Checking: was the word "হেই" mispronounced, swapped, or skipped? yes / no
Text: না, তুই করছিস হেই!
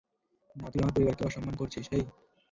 no